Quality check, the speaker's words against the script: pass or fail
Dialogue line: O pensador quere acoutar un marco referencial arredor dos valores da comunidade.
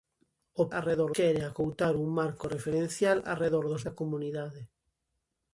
fail